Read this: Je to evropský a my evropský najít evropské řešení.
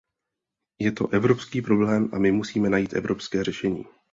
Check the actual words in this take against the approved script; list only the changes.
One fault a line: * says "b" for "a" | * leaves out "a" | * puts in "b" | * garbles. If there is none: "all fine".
* puts in "problém"
* says "musíme" for "evropský"